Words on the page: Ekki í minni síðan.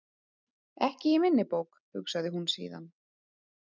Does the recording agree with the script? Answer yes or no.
no